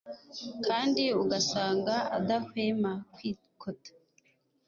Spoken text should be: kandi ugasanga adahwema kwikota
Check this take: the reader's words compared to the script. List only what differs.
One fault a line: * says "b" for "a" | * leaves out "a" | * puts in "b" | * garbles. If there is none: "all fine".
all fine